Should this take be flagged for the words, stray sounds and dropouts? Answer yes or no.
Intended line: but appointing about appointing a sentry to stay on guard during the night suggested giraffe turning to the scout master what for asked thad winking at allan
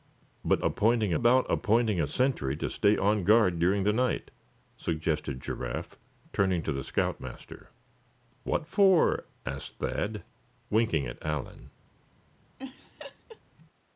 yes